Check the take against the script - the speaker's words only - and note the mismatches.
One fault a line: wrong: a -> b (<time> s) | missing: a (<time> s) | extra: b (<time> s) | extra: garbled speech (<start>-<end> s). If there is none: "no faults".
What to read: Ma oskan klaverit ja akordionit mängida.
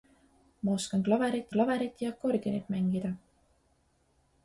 extra: klaverit (1.5 s)